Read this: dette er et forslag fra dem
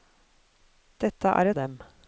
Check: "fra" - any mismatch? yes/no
yes